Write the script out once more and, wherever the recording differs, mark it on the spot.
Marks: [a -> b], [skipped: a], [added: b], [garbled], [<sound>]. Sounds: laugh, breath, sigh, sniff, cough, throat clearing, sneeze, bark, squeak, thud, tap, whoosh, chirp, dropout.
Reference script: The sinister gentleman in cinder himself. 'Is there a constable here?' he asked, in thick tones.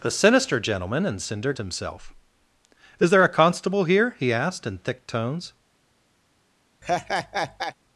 The sinister gentleman in cinder himself. 'Is there a constable here?' he asked, in thick tones. [laugh]